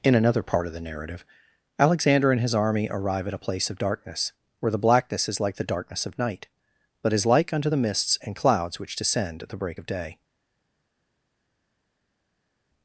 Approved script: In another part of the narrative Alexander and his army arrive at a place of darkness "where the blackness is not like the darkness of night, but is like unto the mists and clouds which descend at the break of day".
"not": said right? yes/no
no